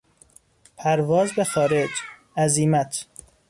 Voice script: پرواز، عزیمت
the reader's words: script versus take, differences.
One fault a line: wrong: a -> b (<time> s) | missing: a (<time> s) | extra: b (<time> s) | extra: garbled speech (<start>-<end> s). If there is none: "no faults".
extra: به خارج (1.3 s)